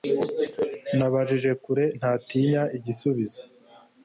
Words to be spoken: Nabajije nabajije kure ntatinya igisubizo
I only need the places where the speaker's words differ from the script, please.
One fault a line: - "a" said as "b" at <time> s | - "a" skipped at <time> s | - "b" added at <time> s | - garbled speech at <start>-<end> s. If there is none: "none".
- "nabajije" skipped at 1.5 s